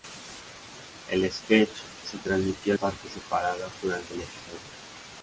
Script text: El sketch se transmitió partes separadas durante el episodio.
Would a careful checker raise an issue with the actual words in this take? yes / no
no